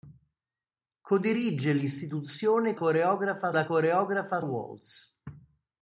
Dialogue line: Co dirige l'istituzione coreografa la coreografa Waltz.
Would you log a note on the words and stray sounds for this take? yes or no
no